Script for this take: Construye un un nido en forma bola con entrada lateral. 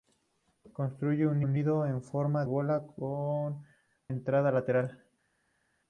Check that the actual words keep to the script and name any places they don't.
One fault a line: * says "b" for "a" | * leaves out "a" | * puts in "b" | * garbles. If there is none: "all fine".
all fine